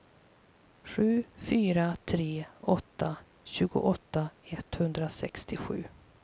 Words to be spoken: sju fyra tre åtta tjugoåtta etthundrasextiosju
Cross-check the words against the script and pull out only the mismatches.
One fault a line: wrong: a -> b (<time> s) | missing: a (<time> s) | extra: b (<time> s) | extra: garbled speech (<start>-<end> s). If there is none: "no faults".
no faults